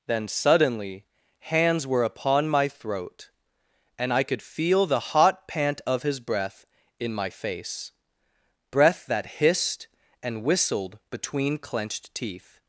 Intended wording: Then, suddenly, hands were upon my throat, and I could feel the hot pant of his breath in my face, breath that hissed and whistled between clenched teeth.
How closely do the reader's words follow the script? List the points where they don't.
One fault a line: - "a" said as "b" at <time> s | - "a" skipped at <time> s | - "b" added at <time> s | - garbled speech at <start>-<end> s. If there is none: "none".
none